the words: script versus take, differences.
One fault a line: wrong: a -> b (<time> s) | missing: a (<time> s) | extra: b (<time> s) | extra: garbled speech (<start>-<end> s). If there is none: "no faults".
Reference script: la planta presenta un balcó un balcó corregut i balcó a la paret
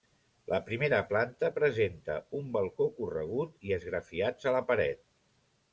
extra: primera (0.7 s)
missing: un balcó (2.9 s)
wrong: balcó -> esgrafiats (3.8 s)